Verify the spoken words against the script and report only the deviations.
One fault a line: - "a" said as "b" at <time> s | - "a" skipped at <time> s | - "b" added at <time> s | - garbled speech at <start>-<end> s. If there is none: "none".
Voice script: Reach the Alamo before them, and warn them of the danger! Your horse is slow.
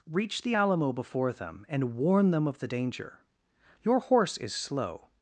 none